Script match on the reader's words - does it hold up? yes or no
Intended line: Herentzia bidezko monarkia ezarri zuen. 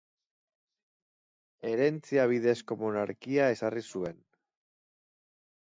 yes